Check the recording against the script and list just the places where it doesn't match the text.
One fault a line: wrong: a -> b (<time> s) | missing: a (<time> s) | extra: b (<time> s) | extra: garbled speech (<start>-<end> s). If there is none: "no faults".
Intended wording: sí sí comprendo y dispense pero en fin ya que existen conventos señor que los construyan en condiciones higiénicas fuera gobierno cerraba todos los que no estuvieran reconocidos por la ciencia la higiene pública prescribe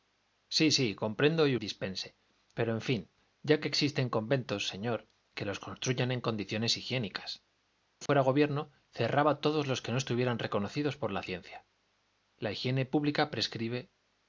no faults